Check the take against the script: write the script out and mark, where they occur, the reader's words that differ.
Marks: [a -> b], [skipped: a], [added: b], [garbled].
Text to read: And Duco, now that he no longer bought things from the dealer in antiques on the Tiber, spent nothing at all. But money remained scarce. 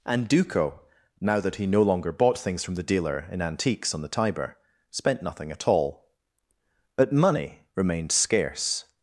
And Duco, now that he no longer bought things from the dealer in antiques on the Tiber, spent nothing at all. But money remained scarce.